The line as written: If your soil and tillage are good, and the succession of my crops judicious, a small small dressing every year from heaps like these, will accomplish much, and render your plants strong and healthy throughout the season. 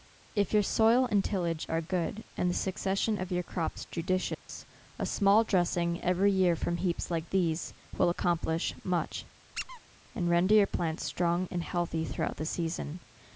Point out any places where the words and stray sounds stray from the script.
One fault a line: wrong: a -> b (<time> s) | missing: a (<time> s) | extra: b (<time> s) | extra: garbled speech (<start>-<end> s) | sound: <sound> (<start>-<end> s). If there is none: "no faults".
wrong: my -> your (3.3 s)
sound: dropout (4.3-4.5 s)
missing: small (5.4 s)
sound: squeak (9.5-9.8 s)